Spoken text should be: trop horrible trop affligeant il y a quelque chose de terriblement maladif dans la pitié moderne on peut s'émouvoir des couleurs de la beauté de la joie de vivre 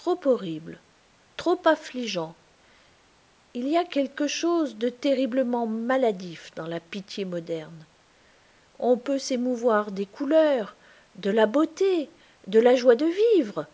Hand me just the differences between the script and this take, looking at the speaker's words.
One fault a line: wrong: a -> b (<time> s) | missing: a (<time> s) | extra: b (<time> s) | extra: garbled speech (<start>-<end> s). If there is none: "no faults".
no faults